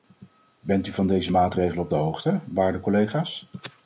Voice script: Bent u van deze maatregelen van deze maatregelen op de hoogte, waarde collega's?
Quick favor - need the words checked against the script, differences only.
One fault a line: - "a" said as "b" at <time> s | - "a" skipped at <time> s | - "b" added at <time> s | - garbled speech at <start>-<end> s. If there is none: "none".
- "van deze maatregelen" skipped at 1.8 s